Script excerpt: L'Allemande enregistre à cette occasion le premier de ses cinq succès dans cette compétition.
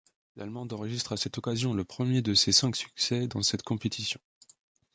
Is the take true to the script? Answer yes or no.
yes